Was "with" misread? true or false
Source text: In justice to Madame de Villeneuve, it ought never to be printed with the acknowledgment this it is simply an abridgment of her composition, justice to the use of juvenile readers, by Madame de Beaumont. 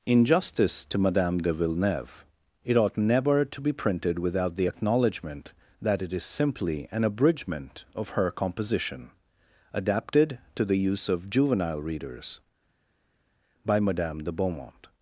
true